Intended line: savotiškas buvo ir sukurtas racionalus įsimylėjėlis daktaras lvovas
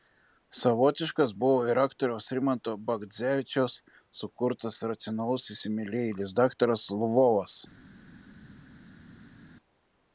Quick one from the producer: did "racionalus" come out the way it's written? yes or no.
yes